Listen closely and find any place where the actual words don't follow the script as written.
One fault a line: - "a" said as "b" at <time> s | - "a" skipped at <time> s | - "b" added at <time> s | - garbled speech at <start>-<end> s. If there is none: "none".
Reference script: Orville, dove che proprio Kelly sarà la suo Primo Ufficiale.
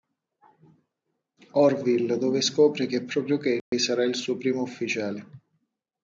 - "scopre" added at 2.4 s
- "la" said as "il" at 4.0 s